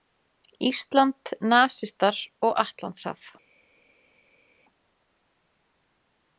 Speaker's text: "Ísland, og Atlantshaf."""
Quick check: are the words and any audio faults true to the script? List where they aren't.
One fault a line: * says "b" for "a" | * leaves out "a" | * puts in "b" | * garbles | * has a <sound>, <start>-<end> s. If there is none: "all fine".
* puts in "nasistar"